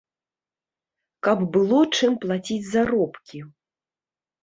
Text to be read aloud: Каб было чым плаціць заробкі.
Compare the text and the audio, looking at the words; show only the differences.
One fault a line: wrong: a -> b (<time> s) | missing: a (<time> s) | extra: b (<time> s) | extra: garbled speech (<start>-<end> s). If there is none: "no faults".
no faults